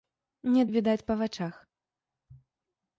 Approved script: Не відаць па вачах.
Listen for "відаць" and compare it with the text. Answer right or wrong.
right